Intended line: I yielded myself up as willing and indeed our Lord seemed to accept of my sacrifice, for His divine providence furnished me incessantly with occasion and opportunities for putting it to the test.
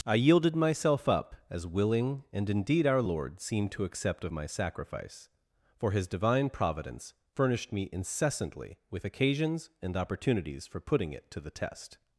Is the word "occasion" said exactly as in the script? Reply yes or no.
no